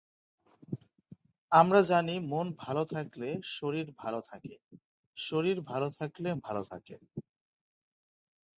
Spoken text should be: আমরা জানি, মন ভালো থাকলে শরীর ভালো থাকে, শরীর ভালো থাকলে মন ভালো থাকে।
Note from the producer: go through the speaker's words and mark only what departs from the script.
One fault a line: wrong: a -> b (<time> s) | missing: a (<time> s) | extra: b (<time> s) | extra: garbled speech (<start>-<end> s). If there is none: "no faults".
missing: মন (6.3 s)